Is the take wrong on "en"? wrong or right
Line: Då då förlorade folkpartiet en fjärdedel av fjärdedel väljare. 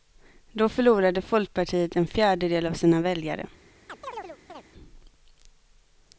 right